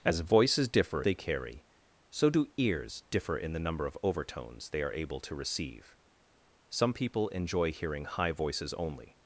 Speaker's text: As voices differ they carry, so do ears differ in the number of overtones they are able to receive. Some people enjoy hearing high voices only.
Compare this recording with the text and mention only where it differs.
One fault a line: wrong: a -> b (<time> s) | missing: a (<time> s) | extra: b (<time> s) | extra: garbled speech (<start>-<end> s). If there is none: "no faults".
no faults